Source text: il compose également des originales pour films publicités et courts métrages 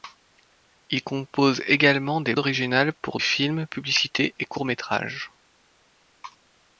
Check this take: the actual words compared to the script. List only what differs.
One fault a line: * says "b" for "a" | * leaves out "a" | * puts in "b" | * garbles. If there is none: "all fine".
all fine